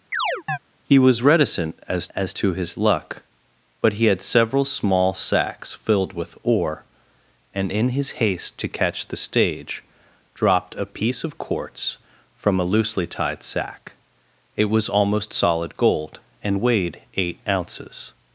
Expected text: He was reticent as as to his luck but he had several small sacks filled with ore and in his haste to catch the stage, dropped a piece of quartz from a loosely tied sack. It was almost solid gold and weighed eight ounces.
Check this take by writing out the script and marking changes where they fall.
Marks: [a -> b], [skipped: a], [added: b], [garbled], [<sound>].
[chirp] He was reticent as as to his luck but he had several small sacks filled with ore and in his haste to catch the stage, dropped a piece of quartz from a loosely tied sack. It was almost solid gold and weighed eight ounces.